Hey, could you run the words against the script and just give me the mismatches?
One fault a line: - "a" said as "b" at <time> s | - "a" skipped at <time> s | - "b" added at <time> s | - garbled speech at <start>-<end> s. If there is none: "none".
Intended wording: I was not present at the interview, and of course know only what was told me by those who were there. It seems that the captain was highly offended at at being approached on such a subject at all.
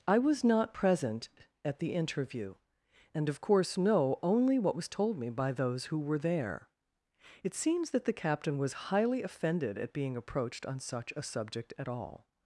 - "at" skipped at 9.9 s